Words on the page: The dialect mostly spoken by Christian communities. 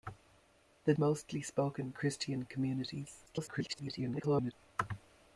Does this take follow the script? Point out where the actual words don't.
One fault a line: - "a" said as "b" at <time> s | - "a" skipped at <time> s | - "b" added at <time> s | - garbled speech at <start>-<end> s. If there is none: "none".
- "dialect" skipped at 0.9 s
- "by" skipped at 1.9 s
- garbled speech at 3.3-4.5 s